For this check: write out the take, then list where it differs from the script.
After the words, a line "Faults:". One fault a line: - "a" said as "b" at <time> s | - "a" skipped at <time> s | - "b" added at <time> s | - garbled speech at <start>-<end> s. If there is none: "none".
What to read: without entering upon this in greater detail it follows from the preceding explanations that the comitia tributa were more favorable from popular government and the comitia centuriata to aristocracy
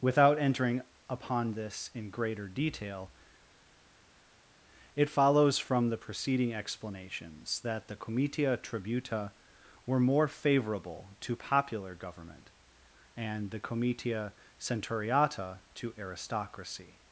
without entering upon this in greater detail it follows from the preceding explanations that the comitia tributa were more favorable to popular government and the comitia centuriata to aristocracy
Faults:
- "from" said as "to" at 11.2 s